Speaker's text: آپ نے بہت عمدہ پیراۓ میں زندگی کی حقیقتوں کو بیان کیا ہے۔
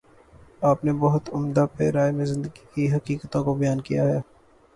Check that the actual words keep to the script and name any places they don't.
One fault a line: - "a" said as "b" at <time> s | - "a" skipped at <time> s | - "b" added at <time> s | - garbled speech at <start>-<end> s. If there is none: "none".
none